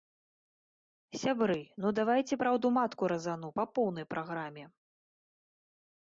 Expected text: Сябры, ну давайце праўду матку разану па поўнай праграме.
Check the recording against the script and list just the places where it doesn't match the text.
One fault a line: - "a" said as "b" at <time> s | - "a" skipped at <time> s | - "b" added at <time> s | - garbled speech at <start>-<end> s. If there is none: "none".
none